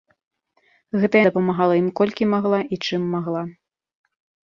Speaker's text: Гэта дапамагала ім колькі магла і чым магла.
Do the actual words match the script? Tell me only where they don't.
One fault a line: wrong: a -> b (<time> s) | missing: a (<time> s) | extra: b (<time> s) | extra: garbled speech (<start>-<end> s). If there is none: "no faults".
no faults